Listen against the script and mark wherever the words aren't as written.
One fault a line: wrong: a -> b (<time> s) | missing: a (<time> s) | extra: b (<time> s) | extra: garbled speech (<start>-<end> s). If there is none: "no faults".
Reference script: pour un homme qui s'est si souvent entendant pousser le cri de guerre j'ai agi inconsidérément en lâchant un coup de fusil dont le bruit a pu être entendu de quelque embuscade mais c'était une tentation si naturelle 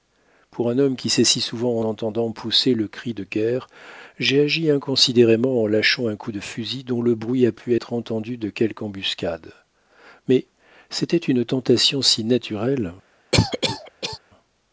no faults